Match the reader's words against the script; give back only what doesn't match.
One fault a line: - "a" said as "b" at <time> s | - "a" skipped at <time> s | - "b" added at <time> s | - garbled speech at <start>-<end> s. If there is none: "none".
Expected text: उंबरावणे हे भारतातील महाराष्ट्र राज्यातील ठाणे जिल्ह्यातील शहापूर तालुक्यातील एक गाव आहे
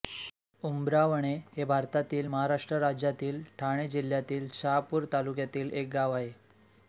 none